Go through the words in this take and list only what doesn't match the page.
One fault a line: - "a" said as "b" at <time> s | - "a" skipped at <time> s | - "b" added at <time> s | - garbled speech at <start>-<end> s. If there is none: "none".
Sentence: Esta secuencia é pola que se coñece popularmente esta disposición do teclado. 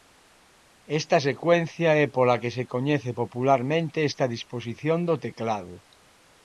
none